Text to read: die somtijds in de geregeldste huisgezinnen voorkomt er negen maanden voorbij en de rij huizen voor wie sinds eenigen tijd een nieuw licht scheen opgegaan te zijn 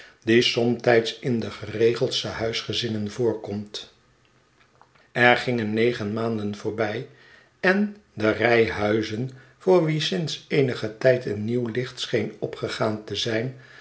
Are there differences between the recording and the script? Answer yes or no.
yes